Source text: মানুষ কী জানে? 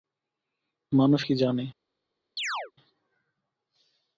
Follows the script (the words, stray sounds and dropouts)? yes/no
no